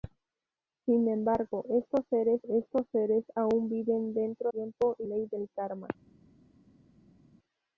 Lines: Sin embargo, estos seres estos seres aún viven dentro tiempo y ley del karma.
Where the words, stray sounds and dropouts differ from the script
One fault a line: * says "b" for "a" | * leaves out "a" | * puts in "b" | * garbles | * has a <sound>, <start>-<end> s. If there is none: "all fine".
all fine